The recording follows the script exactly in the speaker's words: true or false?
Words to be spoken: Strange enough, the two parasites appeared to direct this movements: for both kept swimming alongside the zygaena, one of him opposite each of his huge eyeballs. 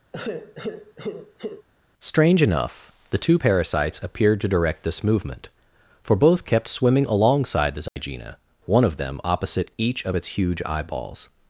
false